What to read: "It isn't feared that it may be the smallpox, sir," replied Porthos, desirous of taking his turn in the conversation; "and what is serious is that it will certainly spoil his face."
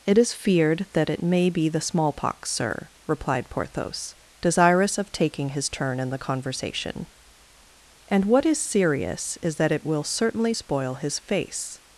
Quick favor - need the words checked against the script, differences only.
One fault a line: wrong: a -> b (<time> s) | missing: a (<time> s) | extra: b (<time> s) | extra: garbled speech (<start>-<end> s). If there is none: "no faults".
wrong: isn't -> is (0.2 s)